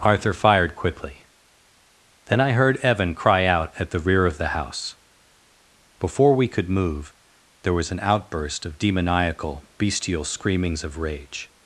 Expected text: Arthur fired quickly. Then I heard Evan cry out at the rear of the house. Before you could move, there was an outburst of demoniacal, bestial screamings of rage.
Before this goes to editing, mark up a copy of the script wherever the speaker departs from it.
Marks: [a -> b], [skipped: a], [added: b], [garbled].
Arthur fired quickly. Then I heard Evan cry out at the rear of the house. Before [you -> we] could move, there was an outburst of demoniacal, bestial screamings of rage.